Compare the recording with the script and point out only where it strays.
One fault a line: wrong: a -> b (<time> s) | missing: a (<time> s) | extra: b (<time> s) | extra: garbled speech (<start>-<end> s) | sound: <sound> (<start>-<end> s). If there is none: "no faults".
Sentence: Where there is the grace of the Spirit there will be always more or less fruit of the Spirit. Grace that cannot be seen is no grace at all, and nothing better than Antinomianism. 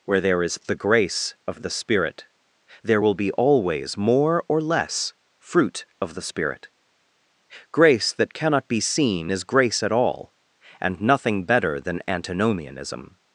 missing: no (9.4 s)